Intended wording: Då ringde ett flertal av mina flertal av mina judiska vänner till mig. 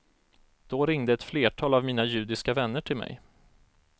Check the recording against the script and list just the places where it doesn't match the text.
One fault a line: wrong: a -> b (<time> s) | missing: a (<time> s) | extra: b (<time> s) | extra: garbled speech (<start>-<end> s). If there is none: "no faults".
missing: flertal av mina (2.0 s)